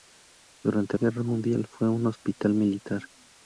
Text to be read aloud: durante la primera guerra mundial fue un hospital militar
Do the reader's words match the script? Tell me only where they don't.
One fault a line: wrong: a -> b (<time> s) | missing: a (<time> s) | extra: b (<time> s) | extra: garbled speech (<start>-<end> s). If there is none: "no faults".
missing: la primera (1.0 s)